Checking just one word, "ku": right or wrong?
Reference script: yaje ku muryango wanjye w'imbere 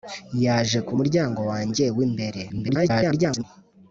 right